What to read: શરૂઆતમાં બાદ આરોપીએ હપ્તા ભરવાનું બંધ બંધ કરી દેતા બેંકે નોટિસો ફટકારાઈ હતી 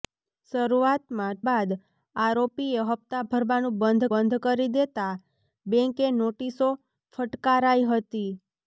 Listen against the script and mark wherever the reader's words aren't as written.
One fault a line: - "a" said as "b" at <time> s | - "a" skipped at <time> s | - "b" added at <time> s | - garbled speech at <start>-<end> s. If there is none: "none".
none